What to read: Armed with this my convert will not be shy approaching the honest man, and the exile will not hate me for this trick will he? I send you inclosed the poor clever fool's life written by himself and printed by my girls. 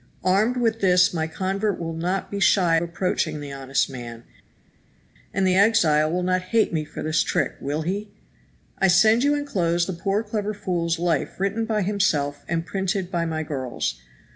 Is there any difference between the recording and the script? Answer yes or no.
no